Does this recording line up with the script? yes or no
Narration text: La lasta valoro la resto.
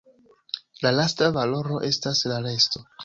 no